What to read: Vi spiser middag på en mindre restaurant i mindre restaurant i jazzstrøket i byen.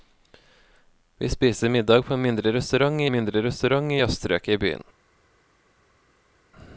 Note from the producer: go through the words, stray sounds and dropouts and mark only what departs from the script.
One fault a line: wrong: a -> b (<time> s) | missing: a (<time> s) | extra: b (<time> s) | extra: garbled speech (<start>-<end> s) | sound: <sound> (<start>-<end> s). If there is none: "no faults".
no faults